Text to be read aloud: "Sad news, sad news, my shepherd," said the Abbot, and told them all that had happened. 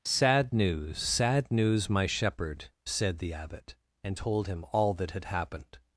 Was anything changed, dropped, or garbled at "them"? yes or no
yes